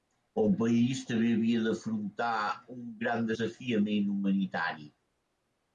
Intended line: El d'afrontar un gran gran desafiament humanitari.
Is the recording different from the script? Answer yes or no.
yes